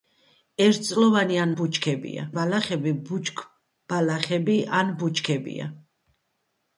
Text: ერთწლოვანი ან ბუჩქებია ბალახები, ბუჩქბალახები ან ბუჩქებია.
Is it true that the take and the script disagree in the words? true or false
false